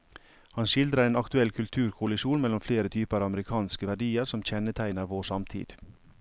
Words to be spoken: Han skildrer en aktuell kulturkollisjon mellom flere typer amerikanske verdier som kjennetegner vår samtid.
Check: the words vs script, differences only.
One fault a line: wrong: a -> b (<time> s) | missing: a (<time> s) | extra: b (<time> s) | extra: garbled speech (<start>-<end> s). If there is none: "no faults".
no faults